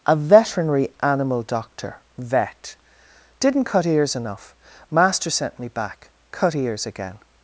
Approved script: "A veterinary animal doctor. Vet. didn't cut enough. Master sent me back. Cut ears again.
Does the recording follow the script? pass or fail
fail